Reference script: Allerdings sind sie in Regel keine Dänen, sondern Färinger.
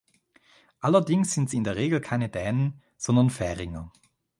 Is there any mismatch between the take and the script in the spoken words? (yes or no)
yes